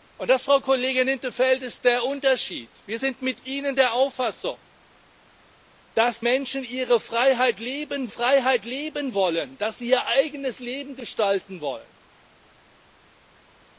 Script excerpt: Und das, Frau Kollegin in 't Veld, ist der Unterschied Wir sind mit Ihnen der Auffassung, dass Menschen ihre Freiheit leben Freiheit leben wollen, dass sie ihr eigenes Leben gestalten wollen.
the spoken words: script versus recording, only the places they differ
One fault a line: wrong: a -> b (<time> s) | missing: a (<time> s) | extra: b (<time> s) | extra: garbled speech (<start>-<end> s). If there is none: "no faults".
no faults